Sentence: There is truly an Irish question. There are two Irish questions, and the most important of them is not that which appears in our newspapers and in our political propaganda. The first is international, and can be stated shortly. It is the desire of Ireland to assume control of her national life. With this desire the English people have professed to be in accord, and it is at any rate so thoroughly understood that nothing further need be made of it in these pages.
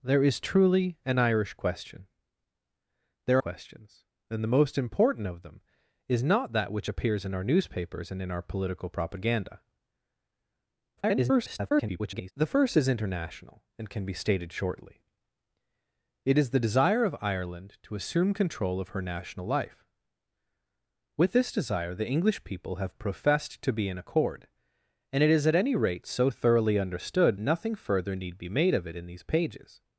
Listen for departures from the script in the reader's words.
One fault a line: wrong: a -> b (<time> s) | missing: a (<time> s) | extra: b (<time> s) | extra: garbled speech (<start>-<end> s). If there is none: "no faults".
missing: are two Irish (3.4 s)
extra: garbled speech (11.0-12.3 s)
missing: that (27.4 s)